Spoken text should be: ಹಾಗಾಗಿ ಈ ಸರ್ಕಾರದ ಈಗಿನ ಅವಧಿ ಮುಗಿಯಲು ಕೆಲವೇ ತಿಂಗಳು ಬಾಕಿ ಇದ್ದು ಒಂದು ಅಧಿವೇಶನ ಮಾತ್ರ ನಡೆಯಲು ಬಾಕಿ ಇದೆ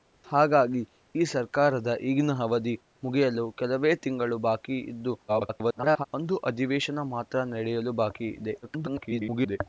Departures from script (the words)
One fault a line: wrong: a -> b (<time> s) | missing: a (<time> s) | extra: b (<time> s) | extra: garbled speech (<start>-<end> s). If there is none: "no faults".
extra: garbled speech (5.3-6.1 s)
extra: garbled speech (8.6-9.6 s)